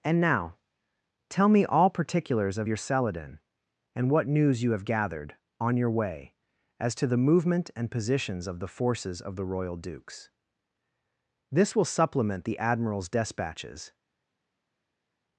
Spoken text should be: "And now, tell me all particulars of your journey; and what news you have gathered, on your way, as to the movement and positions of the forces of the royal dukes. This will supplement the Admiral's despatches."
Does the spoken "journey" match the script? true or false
false